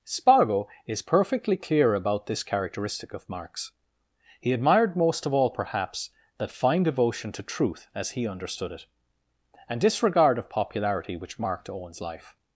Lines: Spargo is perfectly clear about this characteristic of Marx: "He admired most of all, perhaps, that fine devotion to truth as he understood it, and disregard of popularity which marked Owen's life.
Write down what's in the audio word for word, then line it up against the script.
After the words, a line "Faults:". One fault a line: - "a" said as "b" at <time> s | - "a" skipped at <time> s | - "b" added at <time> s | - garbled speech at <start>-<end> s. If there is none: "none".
Spargo is perfectly clear about this characteristic of Marx: "He admired most of all, perhaps, that fine devotion to truth as he understood it, and disregard of popularity which marked Owen's life.
Faults:
none